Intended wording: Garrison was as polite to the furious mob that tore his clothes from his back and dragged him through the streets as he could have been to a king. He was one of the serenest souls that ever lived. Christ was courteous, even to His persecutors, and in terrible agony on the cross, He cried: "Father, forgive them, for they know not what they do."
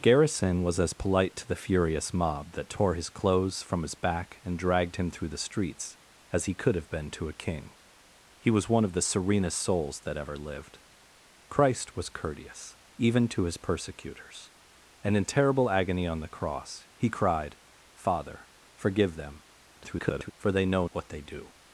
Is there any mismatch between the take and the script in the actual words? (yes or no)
yes